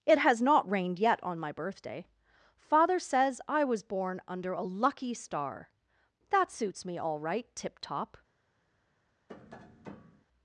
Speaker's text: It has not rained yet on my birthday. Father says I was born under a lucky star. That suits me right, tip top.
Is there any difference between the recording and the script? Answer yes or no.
yes